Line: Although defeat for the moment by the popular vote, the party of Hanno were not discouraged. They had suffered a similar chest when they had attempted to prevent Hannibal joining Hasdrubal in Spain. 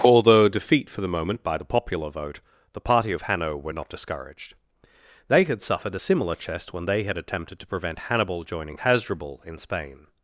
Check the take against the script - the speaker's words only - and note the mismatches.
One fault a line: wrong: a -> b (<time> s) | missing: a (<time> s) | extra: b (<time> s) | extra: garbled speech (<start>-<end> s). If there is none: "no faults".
no faults